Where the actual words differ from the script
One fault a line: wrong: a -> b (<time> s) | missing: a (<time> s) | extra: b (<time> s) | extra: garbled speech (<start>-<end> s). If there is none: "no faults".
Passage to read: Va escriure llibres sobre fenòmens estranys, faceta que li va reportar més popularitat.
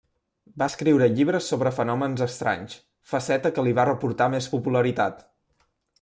no faults